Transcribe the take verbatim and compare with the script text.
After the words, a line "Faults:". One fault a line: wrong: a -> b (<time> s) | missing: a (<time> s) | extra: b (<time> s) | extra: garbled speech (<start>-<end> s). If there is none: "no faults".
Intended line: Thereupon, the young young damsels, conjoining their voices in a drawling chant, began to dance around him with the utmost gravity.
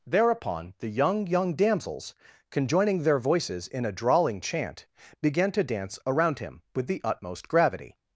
Thereupon, the young young damsels, conjoining their voices in a drawling chant, began to dance around him with the utmost gravity.
Faults:
no faults